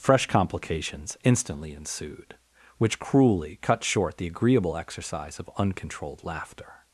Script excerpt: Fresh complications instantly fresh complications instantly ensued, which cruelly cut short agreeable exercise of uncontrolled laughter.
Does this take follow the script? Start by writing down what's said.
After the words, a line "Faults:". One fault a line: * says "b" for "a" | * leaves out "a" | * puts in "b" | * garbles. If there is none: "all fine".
Fresh complications instantly ensued, which cruelly cut short the agreeable exercise of uncontrolled laughter.
Faults:
* leaves out "fresh complications instantly"
* puts in "the"